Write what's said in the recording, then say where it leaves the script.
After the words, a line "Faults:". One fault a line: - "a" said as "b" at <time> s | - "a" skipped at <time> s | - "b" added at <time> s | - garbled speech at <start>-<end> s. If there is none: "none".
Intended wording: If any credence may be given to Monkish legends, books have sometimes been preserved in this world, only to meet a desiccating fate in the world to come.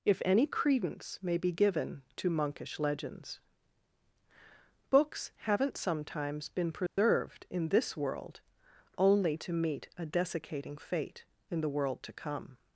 If any credence may be given to Monkish legends, books haven't sometimes been preserved in this world, only to meet a desiccating fate in the world to come.
Faults:
- "have" said as "haven't" at 5.4 s